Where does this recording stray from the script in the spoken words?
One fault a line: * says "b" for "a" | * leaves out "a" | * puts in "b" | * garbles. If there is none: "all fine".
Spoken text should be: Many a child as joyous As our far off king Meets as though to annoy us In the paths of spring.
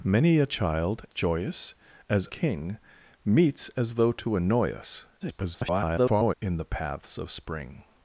* leaves out "as"
* leaves out "our far off"
* garbles